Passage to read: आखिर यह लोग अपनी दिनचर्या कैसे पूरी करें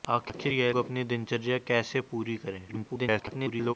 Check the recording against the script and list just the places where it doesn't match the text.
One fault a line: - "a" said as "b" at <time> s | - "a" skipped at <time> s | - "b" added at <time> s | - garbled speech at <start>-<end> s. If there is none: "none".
- "लोग" skipped at 0.7 s
- garbled speech at 2.7-3.7 s